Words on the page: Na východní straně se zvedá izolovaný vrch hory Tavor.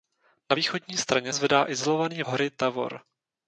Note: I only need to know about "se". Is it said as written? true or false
false